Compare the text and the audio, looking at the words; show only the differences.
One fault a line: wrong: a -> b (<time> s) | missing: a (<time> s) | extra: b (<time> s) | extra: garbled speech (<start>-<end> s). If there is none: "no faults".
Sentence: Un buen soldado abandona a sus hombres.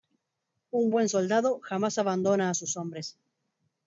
extra: jamás (1.6 s)